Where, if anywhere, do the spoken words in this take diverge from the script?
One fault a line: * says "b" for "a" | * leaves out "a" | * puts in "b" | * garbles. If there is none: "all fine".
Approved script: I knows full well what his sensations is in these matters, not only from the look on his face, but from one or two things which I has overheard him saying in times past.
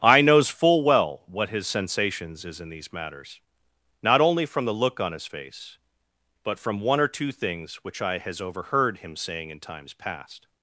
all fine